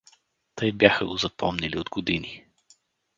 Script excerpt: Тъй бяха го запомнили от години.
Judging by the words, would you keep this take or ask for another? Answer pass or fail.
pass